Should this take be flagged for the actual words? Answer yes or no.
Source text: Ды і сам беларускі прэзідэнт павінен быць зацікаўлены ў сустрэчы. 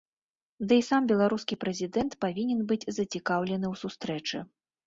no